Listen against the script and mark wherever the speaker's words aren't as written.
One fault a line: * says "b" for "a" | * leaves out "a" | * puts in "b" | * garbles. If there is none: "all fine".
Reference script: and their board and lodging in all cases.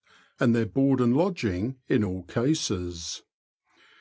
all fine